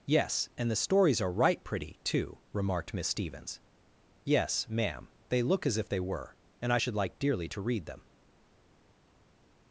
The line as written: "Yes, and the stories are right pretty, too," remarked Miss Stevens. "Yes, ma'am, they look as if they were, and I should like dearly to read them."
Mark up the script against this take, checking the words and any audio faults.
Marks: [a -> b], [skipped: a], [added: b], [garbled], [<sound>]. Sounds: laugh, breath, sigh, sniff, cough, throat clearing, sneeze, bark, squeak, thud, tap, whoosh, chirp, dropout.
"Yes, and the stories are right pretty, too," remarked Miss Stevens. "Yes, ma'am, they look as if they were, and I should like dearly to read them."